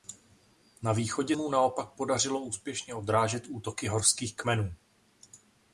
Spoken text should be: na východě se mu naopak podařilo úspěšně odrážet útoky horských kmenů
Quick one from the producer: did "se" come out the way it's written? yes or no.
no